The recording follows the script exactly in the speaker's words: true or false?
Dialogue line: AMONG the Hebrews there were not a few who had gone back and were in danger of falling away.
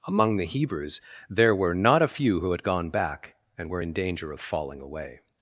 true